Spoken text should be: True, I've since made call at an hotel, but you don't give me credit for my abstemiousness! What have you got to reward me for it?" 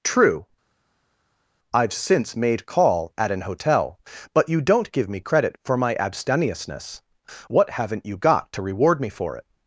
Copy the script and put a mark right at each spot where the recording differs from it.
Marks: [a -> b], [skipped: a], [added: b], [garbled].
True, I've since made call at an hotel, but you don't give me credit for my abstemiousness! What [have -> haven't] you got to reward me for it?"